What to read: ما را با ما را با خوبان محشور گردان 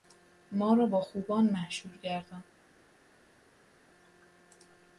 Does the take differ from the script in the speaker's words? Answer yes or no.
yes